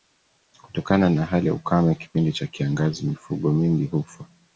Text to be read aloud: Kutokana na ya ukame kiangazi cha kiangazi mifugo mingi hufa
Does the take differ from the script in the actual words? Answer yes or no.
yes